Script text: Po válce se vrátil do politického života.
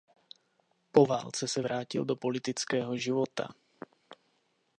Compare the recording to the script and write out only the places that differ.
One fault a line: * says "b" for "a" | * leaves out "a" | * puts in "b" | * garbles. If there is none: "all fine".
all fine